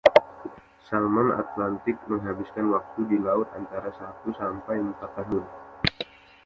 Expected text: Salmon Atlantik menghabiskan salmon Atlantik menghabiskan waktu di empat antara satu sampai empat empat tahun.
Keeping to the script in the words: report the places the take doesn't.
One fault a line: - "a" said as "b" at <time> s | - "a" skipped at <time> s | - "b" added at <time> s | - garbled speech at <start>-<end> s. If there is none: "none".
- "salmon Atlantik menghabiskan" skipped at 2.7 s
- "empat" said as "laut" at 3.2 s
- "empat" skipped at 5.1 s